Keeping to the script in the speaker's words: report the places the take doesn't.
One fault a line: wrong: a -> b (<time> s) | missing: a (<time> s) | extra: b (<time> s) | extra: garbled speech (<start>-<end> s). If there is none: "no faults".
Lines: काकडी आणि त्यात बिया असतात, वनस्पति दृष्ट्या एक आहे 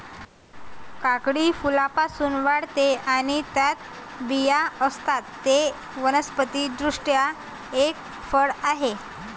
extra: फुलांपासून वाढते (1.5 s)
extra: ते (5.5 s)
extra: फळ (8.3 s)